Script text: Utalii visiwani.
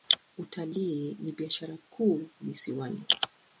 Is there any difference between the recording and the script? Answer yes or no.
yes